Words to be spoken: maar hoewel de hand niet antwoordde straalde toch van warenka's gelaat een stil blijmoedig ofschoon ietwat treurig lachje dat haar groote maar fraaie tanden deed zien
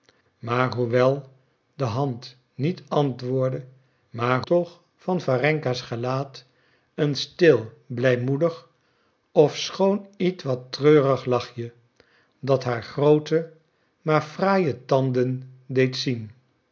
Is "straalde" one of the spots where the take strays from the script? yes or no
yes